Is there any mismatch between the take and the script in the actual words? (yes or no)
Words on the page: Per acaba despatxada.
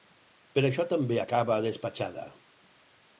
yes